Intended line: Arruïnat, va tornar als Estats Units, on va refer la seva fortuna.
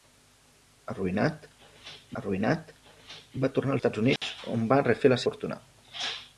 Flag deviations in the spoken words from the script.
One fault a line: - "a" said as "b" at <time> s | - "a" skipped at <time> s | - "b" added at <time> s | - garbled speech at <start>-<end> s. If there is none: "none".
- "arruïnat" added at 2.2 s
- "als" skipped at 3.8 s
- "seva" skipped at 5.2 s